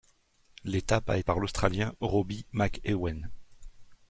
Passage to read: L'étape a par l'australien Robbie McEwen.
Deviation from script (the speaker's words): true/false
false